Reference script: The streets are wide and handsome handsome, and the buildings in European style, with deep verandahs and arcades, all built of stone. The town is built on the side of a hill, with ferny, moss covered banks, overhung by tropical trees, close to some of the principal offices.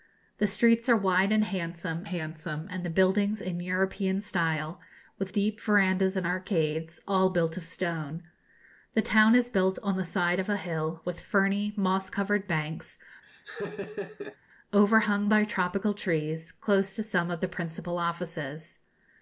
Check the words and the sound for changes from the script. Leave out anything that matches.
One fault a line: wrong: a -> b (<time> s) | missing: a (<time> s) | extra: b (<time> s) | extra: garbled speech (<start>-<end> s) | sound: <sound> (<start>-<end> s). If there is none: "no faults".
sound: laugh (13.2-14.4 s)